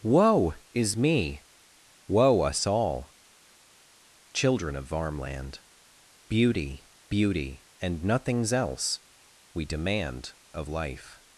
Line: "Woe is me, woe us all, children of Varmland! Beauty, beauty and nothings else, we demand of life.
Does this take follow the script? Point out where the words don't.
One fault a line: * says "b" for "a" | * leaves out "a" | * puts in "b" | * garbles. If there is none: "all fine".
all fine